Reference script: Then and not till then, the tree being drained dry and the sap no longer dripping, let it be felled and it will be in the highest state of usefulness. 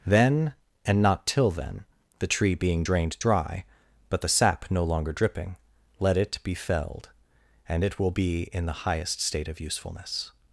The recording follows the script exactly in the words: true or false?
false